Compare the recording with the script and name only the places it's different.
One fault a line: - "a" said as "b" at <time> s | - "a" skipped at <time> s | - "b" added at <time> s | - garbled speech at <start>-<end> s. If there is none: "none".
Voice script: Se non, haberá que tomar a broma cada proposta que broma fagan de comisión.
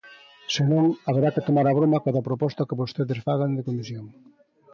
- "broma" said as "vostedes" at 2.8 s